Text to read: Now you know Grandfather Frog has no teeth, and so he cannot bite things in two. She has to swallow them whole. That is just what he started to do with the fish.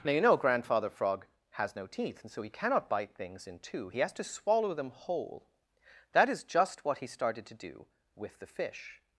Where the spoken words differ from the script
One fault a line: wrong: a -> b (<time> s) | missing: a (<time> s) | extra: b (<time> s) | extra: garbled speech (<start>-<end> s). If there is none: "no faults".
wrong: She -> He (3.9 s)